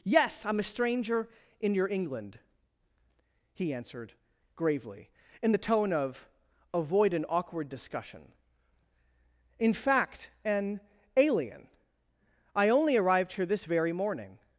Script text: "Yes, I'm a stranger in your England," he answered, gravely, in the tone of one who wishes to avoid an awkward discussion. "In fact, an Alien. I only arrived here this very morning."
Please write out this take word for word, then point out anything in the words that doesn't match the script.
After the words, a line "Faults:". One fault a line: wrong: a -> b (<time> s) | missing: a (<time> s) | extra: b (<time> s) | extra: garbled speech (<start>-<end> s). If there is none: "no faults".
"Yes, I'm a stranger in your England," he answered, gravely, in the tone of avoid an awkward discussion. "In fact, an Alien. I only arrived here this very morning."
Faults:
missing: one who wishes to (6.3 s)